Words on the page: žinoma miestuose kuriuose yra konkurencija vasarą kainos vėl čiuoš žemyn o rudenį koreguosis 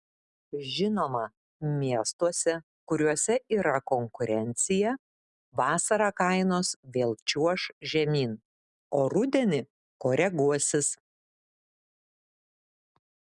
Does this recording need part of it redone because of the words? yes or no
no